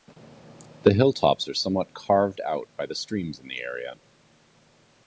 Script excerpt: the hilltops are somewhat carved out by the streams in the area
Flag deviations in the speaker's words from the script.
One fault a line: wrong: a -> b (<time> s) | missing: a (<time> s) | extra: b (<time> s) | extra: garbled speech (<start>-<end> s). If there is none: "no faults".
no faults